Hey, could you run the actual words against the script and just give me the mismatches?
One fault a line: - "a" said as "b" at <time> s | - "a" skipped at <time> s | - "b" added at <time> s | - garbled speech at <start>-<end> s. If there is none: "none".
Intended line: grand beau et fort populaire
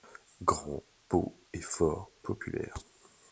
none